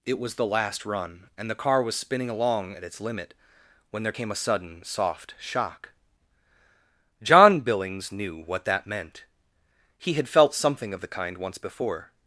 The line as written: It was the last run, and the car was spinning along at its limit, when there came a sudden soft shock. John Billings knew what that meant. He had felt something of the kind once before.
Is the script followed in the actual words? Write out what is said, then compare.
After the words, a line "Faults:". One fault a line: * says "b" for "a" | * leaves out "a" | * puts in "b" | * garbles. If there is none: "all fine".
It was the last run, and the car was spinning along at its limit, when there came a sudden soft shock. John Billings knew what that meant. He had felt something of the kind once before.
Faults:
all fine